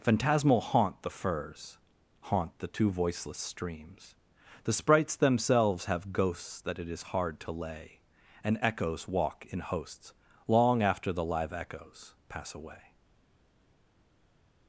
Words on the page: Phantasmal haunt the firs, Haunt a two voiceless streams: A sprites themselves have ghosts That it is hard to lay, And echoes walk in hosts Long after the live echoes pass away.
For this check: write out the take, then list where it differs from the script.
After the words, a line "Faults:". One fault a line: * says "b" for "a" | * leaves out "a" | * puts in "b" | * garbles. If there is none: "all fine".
Phantasmal haunt the firs, Haunt the two voiceless streams: The sprites themselves have ghosts That it is hard to lay, And echoes walk in hosts Long after the live echoes pass away.
Faults:
* says "the" for "a"
* says "The" for "A"